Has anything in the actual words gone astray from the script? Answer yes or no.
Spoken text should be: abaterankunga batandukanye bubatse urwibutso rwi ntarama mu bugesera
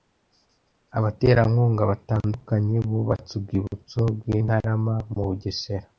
no